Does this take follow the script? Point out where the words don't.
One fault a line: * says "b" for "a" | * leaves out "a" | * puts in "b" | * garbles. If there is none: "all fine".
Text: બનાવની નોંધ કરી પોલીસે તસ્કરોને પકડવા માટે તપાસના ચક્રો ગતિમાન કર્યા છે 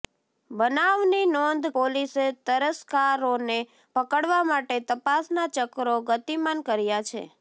* leaves out "કરી"